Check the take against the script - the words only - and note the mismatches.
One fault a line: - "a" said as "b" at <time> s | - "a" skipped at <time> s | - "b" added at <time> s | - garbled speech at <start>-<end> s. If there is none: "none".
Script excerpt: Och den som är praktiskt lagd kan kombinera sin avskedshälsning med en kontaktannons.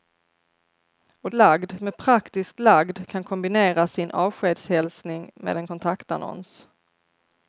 - "den" said as "lagd" at 1.3 s